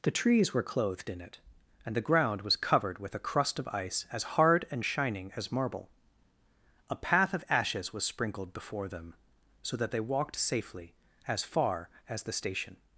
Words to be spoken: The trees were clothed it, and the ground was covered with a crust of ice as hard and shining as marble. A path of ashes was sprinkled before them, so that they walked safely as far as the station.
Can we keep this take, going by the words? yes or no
no